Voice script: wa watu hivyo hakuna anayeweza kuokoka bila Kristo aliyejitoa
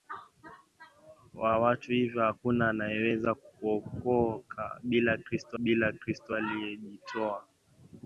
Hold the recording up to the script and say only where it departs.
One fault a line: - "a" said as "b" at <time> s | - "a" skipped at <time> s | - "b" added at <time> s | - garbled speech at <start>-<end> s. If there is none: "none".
- "bila Kristo" added at 5.6 s